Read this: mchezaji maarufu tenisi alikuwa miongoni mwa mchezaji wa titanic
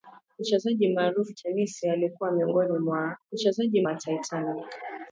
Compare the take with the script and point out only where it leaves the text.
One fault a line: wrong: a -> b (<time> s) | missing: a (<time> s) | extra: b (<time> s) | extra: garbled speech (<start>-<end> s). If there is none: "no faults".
no faults